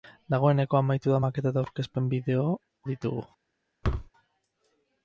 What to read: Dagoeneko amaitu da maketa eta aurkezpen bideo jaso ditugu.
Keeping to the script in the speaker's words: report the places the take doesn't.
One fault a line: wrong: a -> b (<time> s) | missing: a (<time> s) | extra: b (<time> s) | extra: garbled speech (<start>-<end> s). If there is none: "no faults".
missing: jaso (2.5 s)